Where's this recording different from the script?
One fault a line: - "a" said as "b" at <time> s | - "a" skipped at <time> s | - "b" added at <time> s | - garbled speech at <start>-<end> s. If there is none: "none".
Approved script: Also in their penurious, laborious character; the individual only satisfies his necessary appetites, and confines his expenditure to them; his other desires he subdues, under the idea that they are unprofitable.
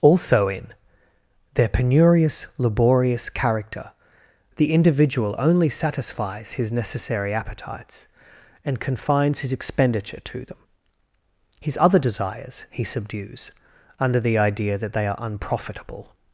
none